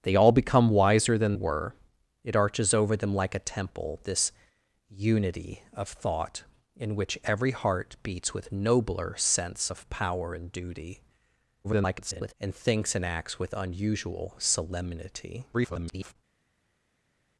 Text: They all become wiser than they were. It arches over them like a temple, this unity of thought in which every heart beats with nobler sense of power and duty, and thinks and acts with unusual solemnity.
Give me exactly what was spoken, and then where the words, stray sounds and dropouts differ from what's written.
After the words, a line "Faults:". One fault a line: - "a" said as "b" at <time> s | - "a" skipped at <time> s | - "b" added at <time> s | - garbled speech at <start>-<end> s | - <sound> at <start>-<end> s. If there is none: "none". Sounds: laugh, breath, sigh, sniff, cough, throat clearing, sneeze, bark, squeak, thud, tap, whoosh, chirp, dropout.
They all become wiser than were. It arches over them like a temple, this unity of thought in which every heart beats with nobler sense of power and duty, [garbled] and thinks and acts with unusual solemnity. [garbled]
Faults:
- "they" skipped at 1.4 s
- garbled speech at 11.6-12.3 s
- garbled speech at 15.5-16.2 s